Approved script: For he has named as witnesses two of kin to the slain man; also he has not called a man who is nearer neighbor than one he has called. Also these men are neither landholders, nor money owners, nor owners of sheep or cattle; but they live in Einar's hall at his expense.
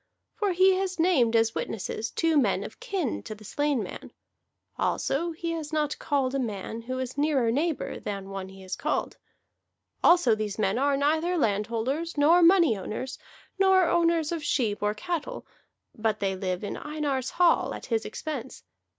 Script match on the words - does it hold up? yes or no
no